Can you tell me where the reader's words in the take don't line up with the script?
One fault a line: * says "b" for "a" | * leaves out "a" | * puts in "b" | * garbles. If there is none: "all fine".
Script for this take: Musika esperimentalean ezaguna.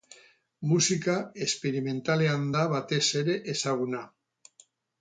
* puts in "da batez ere"